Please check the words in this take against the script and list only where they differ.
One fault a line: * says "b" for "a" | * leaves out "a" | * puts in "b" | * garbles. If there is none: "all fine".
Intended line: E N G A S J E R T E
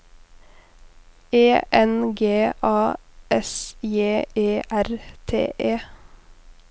all fine